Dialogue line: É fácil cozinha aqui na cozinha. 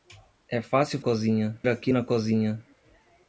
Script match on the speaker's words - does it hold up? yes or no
yes